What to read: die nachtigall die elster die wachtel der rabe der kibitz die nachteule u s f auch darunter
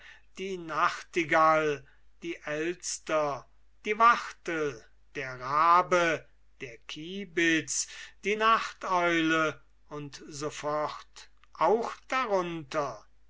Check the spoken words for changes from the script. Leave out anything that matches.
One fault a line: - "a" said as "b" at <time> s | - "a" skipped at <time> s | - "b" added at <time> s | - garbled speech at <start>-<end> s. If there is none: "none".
none